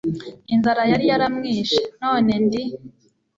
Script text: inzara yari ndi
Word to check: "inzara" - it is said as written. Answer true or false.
true